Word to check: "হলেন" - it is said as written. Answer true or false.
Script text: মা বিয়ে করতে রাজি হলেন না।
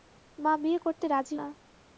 false